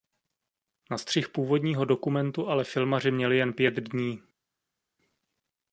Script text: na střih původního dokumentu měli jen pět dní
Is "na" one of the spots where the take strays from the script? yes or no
no